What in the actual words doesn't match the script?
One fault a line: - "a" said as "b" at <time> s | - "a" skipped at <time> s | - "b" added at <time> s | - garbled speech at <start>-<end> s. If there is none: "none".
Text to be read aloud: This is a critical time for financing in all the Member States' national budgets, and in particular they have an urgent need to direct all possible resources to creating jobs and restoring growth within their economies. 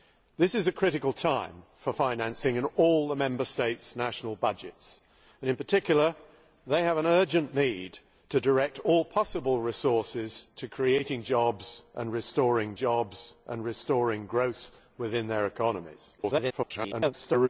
- "jobs and restoring" added at 12.7 s
- garbled speech at 16.2-17.5 s